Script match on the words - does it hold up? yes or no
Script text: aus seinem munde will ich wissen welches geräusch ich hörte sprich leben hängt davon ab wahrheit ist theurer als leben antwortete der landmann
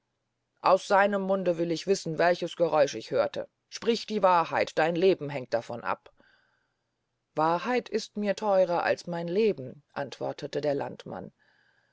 no